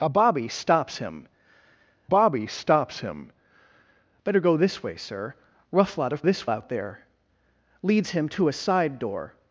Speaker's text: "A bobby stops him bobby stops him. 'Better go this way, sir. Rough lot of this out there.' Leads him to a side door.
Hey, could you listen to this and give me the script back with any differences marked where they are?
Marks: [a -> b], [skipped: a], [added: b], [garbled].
"A bobby stops him bobby stops him. 'Better go this way, sir. Rough lot of this out there.' Leads him to a side door.